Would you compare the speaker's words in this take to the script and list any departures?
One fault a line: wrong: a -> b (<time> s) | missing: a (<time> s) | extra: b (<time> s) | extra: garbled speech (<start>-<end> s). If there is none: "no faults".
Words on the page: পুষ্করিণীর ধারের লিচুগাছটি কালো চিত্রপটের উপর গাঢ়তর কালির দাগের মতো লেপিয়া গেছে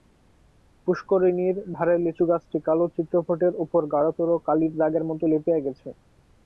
no faults